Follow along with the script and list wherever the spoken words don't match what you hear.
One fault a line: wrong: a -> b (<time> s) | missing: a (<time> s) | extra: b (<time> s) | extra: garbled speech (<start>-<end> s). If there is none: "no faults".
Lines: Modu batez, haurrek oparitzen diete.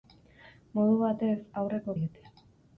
missing: oparitzen (1.9 s)